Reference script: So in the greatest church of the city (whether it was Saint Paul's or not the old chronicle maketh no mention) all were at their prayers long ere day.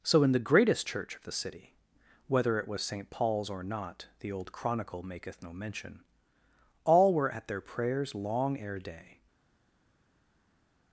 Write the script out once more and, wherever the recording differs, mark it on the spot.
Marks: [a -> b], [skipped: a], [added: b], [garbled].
So in the greatest church of the city (whether it was Saint Paul's or not the old chronicle maketh no mention) all were at their prayers long ere day.